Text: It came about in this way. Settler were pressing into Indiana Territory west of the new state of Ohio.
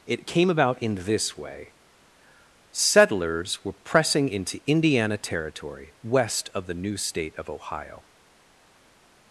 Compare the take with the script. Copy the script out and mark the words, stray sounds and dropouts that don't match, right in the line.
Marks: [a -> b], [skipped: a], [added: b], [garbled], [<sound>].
It came about in this way. [Settler -> Settlers] were pressing into Indiana Territory west of the new state of Ohio.